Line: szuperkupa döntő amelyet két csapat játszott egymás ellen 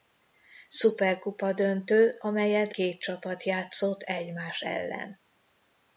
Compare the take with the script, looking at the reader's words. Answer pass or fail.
pass